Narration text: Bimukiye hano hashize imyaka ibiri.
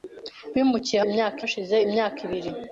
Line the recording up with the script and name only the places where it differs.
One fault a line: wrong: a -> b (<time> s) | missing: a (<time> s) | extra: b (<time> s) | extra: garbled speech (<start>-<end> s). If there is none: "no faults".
wrong: hano -> imyaka (1.1 s)